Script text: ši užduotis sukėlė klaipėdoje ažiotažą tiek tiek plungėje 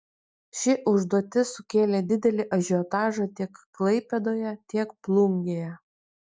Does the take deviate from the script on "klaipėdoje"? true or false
true